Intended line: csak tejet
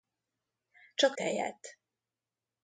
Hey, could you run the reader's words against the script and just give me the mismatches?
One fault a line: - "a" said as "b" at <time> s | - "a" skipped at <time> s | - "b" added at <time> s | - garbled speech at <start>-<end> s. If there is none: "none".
none